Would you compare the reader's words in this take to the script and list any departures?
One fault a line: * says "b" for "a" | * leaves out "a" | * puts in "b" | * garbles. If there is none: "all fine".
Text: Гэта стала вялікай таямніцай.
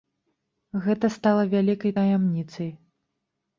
all fine